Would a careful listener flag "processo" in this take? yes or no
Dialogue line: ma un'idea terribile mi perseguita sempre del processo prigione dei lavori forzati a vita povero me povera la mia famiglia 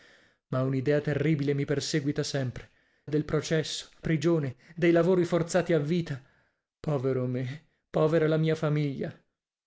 no